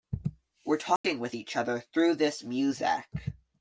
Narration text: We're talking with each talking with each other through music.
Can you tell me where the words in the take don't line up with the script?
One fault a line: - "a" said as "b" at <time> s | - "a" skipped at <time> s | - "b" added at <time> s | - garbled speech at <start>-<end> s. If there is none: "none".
- "talking with each" skipped at 1.6 s
- "this" added at 2.2 s